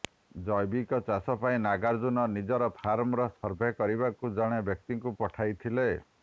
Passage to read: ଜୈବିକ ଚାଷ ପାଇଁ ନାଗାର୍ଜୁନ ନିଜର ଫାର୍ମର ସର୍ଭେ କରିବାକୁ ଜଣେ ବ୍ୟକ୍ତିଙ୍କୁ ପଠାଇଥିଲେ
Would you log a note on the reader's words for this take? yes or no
no